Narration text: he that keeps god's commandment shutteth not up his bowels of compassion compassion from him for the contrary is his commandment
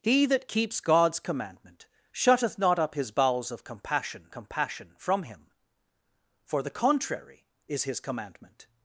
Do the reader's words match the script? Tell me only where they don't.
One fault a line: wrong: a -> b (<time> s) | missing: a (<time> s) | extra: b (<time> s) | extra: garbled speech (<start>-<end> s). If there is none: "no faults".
no faults